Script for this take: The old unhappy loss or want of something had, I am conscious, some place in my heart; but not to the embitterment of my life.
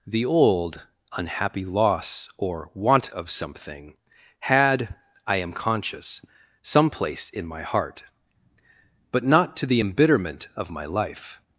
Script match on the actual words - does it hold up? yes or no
yes